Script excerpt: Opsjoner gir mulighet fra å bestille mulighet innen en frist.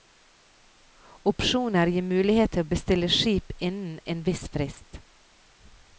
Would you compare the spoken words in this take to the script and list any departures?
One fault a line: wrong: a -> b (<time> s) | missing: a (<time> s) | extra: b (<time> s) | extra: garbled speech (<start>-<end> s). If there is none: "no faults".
wrong: fra -> til (2.5 s)
wrong: mulighet -> skip (3.2 s)
extra: viss (4.2 s)